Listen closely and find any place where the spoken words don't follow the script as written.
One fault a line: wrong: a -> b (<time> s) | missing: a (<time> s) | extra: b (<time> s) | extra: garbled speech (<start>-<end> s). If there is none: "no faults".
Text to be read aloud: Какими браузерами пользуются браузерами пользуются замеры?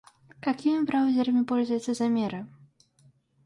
missing: браузерами пользуются (1.9 s)